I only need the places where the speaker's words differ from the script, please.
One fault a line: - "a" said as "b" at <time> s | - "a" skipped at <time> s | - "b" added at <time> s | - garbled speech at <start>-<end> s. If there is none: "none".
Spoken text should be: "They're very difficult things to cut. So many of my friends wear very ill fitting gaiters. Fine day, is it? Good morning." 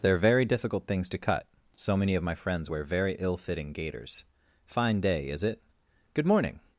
none